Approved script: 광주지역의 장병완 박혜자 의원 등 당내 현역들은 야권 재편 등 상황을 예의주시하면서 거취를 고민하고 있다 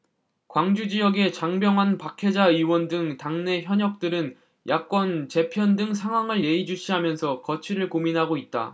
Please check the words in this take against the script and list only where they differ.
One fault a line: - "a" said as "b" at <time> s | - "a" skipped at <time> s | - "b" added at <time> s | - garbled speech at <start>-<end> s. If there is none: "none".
none